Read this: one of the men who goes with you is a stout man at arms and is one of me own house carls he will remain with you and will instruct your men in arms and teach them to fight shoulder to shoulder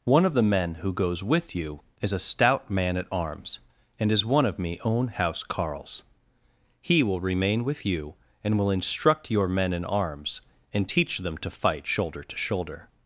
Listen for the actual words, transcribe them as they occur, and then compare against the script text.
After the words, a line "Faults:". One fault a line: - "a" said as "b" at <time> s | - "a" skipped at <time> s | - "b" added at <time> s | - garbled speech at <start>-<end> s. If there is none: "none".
one of the men who goes with you is a stout man at arms and is one of me own house carls he will remain with you and will instruct your men in arms and teach them to fight shoulder to shoulder
Faults:
none